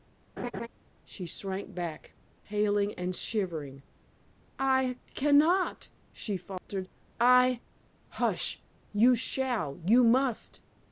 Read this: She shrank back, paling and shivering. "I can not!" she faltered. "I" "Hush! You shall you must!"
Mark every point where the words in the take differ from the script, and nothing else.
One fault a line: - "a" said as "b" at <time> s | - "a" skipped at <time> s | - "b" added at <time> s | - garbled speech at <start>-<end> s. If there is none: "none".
none